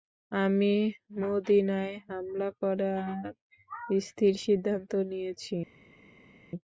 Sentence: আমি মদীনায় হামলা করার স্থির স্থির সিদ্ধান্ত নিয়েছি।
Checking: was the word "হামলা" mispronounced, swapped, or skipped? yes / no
no